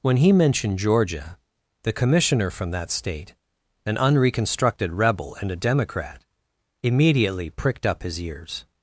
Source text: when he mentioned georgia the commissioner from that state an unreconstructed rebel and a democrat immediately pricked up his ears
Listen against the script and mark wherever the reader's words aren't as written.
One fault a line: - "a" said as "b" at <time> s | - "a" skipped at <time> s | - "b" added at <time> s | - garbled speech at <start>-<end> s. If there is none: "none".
none